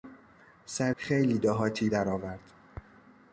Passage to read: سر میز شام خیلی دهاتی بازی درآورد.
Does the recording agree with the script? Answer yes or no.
no